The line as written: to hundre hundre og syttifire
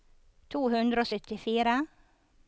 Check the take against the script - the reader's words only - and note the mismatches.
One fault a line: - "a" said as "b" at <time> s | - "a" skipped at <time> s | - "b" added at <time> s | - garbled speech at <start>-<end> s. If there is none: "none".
- "hundre" skipped at 1.0 s